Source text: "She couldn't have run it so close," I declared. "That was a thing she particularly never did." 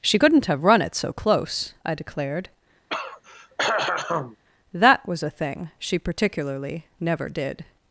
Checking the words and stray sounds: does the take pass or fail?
fail